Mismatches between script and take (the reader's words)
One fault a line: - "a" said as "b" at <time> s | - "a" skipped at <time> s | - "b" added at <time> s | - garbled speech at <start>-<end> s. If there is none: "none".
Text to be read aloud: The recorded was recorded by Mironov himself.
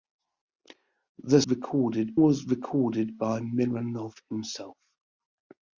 none